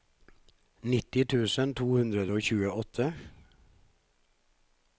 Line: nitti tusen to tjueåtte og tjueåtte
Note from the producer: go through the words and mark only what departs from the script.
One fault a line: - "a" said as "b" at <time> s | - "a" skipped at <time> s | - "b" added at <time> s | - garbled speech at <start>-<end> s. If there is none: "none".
- "tjueåtte" said as "hundre" at 1.9 s